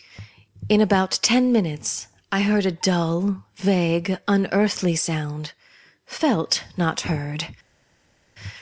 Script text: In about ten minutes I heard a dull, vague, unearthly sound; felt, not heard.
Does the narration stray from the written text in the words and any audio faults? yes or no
no